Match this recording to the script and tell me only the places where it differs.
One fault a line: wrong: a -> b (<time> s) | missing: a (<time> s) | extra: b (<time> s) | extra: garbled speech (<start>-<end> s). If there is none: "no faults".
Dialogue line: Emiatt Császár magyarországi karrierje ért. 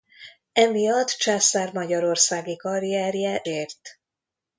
no faults